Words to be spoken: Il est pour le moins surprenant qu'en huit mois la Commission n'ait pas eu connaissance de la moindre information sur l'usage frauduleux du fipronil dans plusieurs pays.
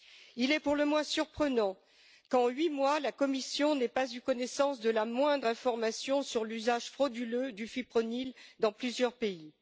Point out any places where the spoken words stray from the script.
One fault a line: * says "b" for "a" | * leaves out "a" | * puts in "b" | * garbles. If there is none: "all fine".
all fine